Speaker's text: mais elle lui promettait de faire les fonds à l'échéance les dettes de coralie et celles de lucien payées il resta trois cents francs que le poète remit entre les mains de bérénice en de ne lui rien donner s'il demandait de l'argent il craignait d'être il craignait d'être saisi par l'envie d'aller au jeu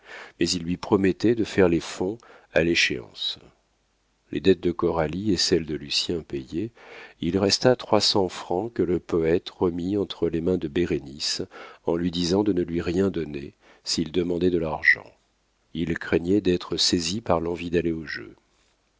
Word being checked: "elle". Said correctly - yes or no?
no